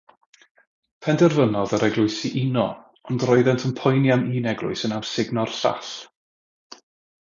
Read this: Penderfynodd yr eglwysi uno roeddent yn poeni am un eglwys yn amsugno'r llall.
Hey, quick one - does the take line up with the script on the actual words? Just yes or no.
no